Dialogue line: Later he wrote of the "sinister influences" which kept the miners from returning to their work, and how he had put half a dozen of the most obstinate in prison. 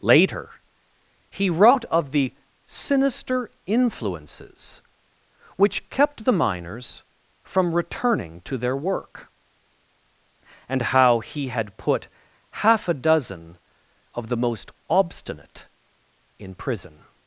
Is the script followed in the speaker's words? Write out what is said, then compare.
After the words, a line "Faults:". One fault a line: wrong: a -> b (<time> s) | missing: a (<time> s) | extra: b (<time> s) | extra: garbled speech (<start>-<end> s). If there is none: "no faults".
Later he wrote of the "sinister influences" which kept the miners from returning to their work, and how he had put half a dozen of the most obstinate in prison.
Faults:
no faults